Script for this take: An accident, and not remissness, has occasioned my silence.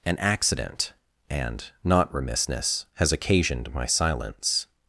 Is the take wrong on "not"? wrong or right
right